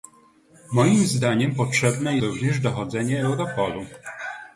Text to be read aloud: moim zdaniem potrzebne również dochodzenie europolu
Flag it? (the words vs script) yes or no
no